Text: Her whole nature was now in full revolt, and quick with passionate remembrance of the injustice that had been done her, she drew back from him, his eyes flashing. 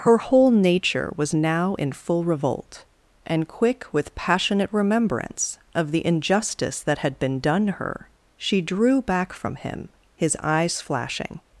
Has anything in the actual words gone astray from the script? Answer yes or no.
no